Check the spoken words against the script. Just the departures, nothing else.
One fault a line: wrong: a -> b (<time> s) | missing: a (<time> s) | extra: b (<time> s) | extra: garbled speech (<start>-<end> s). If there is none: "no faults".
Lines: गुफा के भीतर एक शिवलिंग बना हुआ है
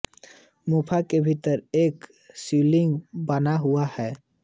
no faults